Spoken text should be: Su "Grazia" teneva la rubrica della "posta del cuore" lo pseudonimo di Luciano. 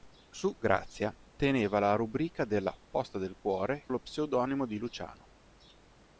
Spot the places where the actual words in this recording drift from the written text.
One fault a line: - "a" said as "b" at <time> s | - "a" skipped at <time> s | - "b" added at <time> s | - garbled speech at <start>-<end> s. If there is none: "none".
none